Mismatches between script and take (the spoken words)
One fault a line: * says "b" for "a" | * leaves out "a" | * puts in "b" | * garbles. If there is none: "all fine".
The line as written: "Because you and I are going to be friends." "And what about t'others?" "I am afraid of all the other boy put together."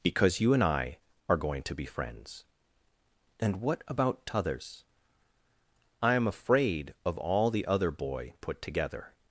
all fine